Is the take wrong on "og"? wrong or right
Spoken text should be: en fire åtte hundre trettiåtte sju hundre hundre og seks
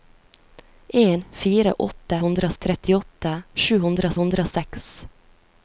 right